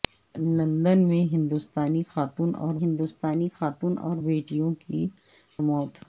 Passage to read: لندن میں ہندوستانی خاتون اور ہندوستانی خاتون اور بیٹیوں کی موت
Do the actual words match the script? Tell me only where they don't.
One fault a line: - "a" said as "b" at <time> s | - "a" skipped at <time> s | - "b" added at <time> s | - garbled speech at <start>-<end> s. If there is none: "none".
none